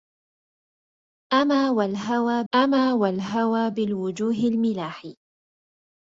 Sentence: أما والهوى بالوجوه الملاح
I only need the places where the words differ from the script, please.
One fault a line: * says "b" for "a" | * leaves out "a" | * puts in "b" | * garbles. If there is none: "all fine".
* puts in "أما والهوى"